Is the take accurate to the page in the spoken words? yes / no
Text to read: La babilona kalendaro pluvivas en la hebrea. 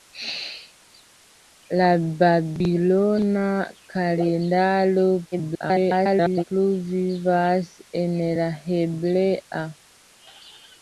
no